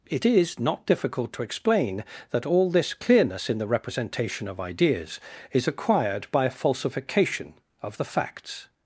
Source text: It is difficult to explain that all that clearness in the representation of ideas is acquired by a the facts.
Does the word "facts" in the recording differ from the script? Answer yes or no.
no